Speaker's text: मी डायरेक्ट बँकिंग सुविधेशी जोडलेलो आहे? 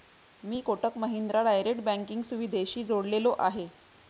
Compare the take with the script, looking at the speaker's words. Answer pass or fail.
fail